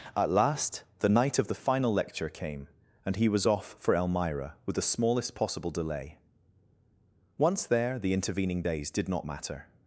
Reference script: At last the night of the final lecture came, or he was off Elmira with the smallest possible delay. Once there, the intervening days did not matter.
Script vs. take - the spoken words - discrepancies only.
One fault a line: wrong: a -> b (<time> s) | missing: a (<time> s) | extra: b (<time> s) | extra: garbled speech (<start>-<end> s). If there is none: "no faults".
wrong: or -> and (3.0 s)
extra: for (3.8 s)